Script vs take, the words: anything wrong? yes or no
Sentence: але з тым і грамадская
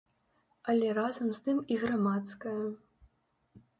yes